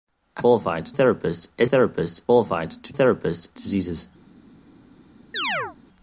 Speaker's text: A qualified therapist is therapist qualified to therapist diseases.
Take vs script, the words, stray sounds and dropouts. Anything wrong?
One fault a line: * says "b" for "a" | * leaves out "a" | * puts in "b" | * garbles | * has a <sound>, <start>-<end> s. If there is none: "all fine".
* has a chirp, 5.3-5.8 s